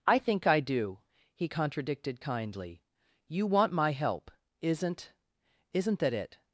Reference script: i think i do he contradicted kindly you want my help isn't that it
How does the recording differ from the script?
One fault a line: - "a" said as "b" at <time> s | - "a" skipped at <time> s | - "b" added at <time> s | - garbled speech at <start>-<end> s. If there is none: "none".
- "isn't" added at 5.7 s